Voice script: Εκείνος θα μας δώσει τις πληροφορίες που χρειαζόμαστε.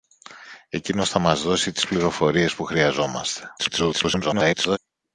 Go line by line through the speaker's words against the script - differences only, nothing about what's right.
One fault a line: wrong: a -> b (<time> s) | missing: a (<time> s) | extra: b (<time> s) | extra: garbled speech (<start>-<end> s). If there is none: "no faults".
extra: garbled speech (3.6-4.8 s)